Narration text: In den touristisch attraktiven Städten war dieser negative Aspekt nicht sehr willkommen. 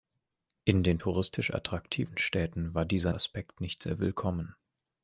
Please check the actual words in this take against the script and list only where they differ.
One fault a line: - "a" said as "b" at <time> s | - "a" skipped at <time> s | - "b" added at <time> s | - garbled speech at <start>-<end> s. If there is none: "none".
- "negative" skipped at 3.1 s